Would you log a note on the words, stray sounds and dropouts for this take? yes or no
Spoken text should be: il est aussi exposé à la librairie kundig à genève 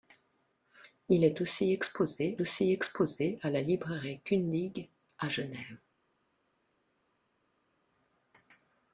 yes